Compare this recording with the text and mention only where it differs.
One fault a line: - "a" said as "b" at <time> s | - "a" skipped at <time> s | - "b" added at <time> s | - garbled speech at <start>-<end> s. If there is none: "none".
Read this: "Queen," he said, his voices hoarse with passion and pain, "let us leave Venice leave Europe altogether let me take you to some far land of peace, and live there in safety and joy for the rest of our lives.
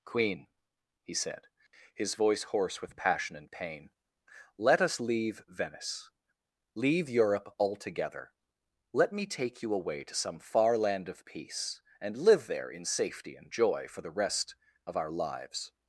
- "voices" said as "voice" at 2.1 s
- "away" added at 9.7 s